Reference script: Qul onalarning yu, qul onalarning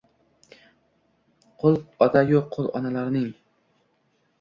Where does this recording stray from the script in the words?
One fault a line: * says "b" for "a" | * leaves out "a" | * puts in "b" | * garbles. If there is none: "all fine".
* says "ota" for "onalarning"